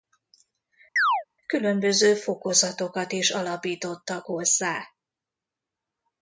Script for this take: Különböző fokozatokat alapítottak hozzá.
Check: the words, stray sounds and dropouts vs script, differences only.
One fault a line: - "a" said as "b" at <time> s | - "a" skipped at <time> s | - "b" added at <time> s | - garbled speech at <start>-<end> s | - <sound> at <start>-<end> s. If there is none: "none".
- chirp at 1.0-1.2 s
- "is" added at 3.1 s